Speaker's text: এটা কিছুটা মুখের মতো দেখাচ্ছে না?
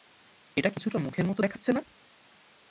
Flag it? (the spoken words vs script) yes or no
no